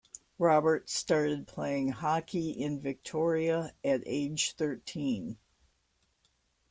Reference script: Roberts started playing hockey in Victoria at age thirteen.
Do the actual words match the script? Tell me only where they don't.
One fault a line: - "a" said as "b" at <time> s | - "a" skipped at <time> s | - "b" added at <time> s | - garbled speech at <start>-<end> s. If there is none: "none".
none